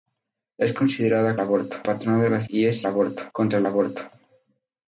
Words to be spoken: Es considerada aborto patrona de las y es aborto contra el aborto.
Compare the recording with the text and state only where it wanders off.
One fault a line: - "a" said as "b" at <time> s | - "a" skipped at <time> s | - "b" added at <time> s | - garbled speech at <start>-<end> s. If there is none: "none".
none